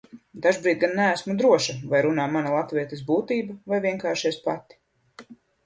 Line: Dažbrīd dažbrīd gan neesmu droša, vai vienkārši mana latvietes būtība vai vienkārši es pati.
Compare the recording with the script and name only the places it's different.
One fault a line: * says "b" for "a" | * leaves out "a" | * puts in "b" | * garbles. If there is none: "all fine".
* leaves out "dažbrīd"
* says "runā" for "vienkārši"